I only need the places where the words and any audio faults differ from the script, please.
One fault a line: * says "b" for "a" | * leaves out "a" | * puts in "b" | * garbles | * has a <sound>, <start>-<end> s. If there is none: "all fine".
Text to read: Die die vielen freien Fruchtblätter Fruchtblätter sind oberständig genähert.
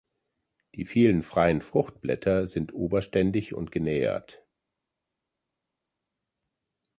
* leaves out "die"
* leaves out "Fruchtblätter"
* puts in "und"